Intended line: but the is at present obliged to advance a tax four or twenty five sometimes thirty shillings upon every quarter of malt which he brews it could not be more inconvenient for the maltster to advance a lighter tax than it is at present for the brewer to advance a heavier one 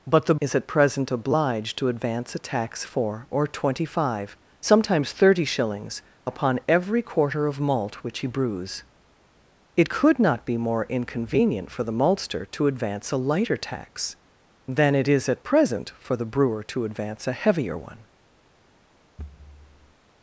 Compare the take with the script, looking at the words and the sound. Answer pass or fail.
fail